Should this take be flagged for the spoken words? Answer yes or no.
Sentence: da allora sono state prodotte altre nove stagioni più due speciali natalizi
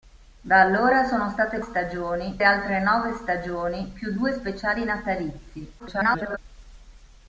yes